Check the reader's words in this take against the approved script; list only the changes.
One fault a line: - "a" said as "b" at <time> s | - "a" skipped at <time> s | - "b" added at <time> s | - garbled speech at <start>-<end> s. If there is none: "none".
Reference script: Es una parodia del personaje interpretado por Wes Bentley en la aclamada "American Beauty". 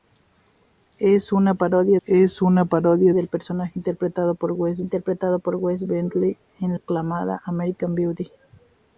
- "es una parodia" added at 2.0 s
- "interpretado por Wes" added at 4.8 s
- "la" skipped at 6.8 s